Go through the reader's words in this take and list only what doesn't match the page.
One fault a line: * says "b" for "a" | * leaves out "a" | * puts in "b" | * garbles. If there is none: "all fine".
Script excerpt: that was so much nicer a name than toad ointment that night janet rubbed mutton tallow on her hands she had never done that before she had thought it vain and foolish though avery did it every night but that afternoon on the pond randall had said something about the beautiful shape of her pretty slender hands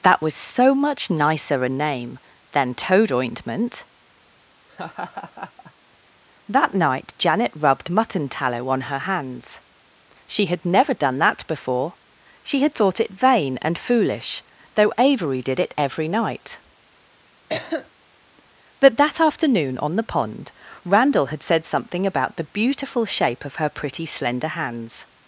all fine